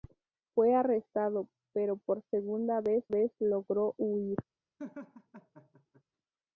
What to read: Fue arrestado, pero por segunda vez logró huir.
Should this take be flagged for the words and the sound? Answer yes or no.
yes